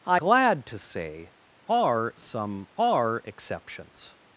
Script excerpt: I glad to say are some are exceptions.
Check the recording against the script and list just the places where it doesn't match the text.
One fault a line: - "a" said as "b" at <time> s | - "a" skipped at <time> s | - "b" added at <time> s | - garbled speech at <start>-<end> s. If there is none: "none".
none